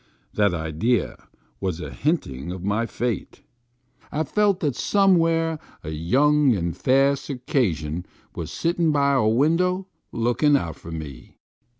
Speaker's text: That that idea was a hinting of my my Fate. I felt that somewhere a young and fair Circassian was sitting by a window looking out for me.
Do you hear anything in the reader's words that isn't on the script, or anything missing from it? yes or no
yes